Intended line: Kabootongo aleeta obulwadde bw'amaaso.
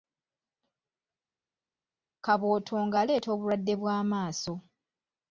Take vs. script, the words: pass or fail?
pass